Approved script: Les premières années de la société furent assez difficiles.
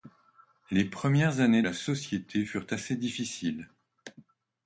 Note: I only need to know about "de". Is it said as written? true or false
false